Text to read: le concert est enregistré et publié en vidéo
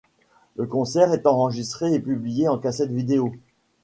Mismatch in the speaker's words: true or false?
true